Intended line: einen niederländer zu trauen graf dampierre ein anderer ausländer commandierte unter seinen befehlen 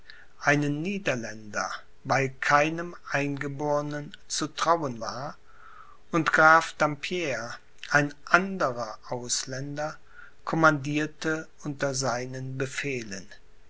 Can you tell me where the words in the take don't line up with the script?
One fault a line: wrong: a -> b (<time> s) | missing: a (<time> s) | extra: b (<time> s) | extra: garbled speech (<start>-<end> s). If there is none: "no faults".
extra: weil keinem eingebornen (2.0 s)
extra: war und (5.0 s)